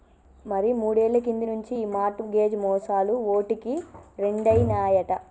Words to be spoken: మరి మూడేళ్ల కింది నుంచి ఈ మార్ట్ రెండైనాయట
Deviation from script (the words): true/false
true